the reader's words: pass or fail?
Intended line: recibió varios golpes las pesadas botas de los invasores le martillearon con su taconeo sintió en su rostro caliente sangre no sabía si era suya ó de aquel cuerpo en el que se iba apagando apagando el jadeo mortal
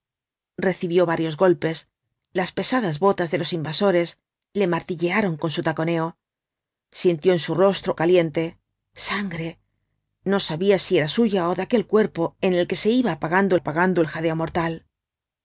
pass